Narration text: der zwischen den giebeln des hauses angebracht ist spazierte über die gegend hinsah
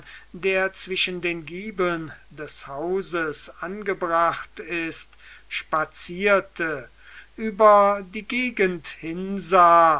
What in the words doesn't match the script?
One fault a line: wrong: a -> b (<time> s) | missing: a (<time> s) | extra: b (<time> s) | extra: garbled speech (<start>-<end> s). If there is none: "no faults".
no faults